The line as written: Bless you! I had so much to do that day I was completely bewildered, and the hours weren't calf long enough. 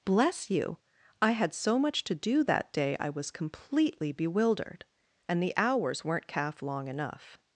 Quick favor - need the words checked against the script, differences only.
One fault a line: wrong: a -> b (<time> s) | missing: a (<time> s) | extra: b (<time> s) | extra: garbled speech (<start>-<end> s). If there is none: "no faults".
no faults